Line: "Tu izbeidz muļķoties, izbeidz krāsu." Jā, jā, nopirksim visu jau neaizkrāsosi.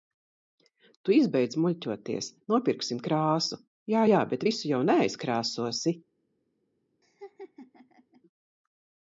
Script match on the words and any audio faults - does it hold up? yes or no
no